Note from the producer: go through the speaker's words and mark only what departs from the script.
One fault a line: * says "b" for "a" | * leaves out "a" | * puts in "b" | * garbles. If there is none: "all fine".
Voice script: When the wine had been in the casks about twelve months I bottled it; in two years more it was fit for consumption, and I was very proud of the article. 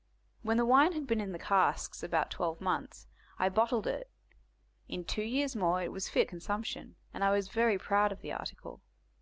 * leaves out "for"